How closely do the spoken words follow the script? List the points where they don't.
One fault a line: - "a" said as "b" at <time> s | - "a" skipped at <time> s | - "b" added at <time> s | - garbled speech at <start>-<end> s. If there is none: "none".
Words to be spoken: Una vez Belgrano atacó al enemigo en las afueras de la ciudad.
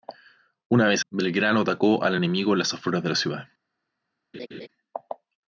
none